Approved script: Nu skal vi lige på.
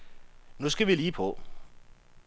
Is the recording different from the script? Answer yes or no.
no